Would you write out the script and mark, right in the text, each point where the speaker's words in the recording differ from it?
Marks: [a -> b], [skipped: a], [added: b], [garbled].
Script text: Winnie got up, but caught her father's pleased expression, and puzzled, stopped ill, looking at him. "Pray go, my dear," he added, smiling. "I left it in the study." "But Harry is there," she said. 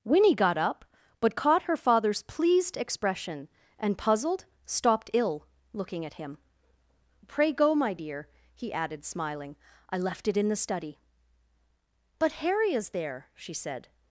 Winnie got up, but caught her father's pleased expression, and puzzled, stopped ill, looking at him. "Pray go, my dear," he added, smiling. "I left it in the study." "But Harry is there," she said.